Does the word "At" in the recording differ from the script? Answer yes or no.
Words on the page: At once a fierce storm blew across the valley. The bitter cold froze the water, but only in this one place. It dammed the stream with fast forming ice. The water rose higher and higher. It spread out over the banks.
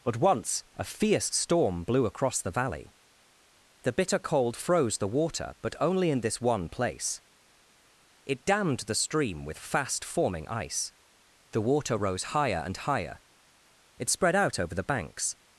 yes